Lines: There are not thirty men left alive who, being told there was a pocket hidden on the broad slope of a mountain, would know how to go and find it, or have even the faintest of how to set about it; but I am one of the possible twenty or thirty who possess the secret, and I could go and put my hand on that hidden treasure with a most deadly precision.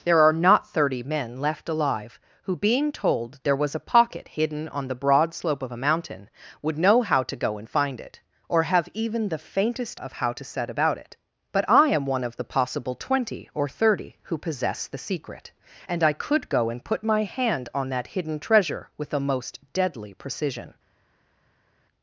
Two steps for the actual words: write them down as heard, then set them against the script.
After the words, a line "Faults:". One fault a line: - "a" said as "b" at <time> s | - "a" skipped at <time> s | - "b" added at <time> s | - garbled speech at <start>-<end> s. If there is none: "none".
There are not thirty men left alive who, being told there was a pocket hidden on the broad slope of a mountain, would know how to go and find it, or have even the faintest of how to set about it; but I am one of the possible twenty or thirty who possess the secret, and I could go and put my hand on that hidden treasure with a most deadly precision.
Faults:
none